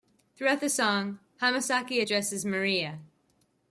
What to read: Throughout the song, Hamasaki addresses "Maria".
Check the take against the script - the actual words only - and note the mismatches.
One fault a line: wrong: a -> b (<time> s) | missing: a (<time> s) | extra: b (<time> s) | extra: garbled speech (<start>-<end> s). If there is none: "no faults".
no faults